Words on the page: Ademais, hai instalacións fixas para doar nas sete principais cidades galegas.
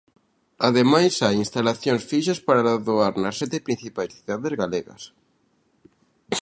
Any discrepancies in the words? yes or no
no